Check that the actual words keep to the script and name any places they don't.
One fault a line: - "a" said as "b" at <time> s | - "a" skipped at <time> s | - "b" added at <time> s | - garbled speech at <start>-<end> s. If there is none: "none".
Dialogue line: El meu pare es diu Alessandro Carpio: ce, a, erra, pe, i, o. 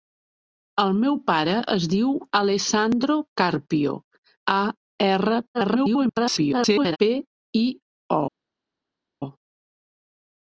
- "ce" skipped at 3.9 s
- garbled speech at 5.5-7.0 s